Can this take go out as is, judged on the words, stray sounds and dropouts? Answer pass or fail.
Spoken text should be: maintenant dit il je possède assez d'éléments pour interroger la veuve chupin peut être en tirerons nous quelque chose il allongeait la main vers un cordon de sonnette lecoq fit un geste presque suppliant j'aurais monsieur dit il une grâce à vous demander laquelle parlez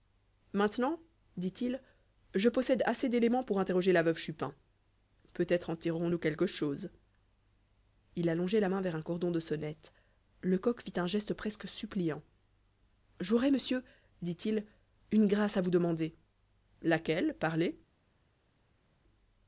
pass